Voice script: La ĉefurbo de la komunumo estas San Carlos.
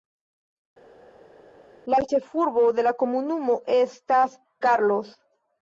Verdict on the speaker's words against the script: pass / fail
fail